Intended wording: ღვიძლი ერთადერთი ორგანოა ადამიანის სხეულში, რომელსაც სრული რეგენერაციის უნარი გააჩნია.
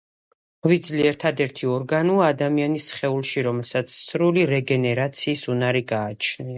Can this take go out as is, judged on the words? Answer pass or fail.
pass